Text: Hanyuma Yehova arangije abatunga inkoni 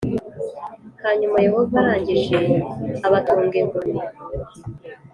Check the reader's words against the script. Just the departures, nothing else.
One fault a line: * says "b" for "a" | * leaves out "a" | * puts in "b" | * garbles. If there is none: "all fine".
all fine